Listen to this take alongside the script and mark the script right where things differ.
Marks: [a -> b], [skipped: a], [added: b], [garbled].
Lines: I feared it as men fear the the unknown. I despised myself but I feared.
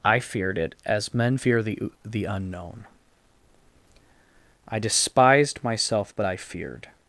I feared it as men fear the the unknown. I despised myself but I feared.